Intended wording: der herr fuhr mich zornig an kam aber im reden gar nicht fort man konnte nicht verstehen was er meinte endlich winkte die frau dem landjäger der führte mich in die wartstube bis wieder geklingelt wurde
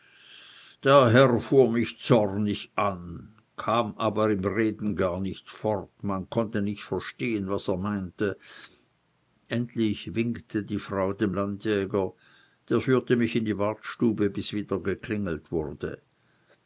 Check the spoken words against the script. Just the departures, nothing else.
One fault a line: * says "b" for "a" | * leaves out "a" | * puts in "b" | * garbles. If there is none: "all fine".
all fine